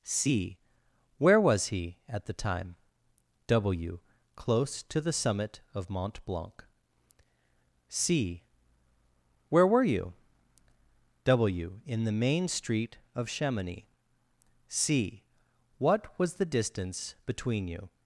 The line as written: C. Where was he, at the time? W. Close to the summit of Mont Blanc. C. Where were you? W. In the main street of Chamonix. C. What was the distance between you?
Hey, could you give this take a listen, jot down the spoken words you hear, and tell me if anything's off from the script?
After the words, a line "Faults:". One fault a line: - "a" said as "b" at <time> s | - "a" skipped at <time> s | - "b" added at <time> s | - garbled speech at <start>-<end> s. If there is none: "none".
C. Where was he, at the time? W. Close to the summit of Mont Blanc. C. Where were you? W. In the main street of Chamonix. C. What was the distance between you?
Faults:
none